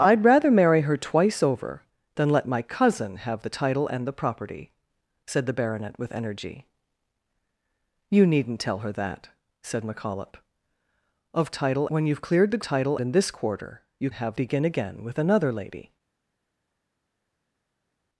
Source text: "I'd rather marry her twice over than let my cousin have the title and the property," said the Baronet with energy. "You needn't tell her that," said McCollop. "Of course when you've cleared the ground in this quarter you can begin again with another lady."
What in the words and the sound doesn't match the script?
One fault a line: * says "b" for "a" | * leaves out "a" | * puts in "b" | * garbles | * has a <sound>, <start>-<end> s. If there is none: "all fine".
* says "title" for "course"
* says "title" for "ground"
* says "have" for "can"